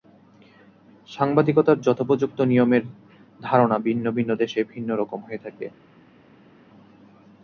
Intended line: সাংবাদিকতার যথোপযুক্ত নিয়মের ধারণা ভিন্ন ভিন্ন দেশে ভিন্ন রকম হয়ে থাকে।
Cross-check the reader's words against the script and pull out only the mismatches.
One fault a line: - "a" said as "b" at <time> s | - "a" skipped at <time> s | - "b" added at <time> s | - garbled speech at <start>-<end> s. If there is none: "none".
none